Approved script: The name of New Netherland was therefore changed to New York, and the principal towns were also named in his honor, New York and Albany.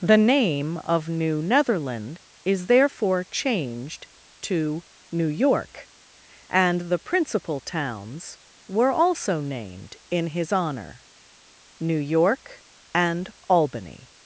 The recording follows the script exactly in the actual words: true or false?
false